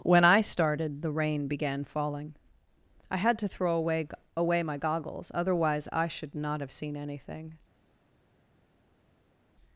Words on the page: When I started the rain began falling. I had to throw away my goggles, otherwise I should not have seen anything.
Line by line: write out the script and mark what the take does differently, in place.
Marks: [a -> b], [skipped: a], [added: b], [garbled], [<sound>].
When I started the rain began falling. I had to throw away [added: away] my goggles, otherwise I should not have seen anything.